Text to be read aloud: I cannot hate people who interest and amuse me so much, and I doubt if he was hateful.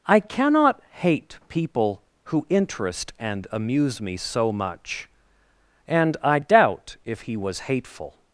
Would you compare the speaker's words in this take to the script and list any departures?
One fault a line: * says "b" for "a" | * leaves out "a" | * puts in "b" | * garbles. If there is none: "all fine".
all fine